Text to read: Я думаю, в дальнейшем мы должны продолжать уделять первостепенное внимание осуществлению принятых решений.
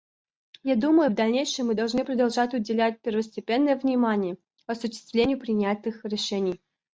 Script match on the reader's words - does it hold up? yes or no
yes